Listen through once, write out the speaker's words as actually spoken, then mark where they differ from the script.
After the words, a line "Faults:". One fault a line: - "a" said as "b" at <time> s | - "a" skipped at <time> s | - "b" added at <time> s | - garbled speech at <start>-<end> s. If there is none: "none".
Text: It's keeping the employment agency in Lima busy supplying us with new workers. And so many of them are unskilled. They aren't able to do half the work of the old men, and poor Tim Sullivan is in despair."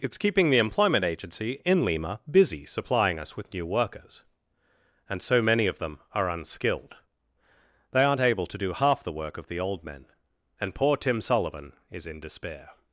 It's keeping the employment agency in Lima busy supplying us with new workers. And so many of them are unskilled. They aren't able to do half the work of the old men, and poor Tim Sullivan is in despair."
Faults:
none